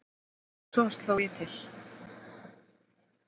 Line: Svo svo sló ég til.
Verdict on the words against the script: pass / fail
fail